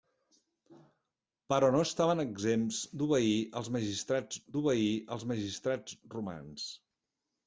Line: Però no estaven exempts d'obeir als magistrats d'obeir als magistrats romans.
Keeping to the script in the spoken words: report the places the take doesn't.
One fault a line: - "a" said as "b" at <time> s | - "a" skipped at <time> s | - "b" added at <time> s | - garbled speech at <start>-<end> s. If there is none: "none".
none